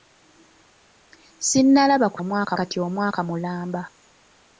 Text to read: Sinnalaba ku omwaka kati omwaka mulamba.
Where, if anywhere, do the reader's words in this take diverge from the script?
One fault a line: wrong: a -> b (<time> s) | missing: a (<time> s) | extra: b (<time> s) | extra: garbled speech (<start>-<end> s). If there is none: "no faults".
no faults